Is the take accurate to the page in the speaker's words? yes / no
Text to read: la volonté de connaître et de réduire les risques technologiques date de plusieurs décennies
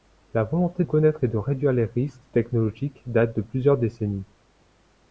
no